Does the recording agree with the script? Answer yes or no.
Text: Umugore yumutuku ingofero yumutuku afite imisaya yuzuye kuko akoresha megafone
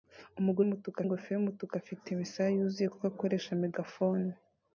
yes